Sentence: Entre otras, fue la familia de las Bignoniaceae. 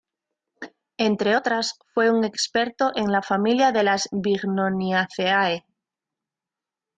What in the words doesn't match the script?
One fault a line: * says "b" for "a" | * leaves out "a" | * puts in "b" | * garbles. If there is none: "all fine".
* puts in "un experto en"